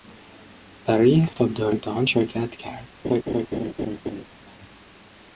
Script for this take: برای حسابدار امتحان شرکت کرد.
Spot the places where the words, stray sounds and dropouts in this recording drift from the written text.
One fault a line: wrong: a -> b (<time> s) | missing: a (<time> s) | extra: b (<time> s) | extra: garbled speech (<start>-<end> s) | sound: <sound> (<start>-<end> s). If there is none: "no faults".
sound: dropout (1.3-1.4 s)
sound: laugh (3.0-4.2 s)